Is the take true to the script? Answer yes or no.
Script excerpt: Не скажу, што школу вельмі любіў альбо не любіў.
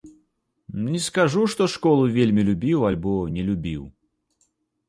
yes